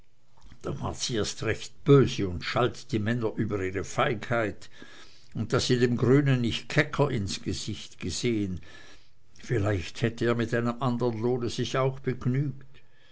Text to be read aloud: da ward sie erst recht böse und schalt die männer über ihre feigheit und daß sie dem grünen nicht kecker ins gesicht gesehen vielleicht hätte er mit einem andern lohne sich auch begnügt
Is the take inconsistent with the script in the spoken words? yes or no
no